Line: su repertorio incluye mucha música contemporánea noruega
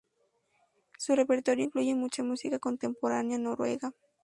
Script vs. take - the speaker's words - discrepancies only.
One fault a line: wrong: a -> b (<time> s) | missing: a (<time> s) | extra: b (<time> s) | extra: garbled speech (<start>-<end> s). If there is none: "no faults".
no faults